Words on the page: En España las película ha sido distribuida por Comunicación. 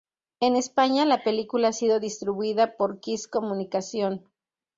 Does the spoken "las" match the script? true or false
false